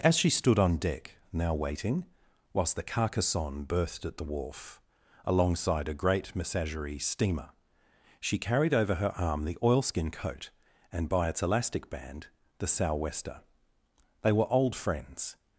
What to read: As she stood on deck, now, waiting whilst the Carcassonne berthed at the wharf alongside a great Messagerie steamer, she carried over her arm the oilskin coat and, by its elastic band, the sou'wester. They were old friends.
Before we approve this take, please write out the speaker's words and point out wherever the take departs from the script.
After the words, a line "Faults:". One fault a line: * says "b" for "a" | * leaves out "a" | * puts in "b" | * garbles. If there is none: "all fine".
As she stood on deck, now, waiting whilst the Carcassonne berthed at the wharf alongside a great Messagerie steamer, she carried over her arm the oilskin coat and, by its elastic band, the sou'wester. They were old friends.
Faults:
all fine